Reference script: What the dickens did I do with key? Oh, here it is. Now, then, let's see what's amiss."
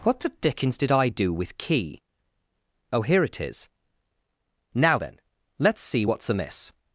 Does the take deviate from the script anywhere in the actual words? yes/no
no